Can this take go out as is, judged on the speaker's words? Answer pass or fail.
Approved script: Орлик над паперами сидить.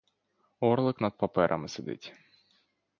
pass